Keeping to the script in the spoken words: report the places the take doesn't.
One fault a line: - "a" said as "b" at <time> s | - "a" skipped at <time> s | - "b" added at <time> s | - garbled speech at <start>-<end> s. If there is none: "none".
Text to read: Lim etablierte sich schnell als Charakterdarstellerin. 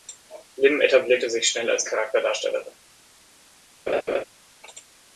none